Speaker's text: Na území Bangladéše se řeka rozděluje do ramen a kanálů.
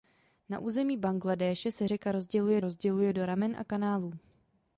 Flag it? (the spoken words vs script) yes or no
yes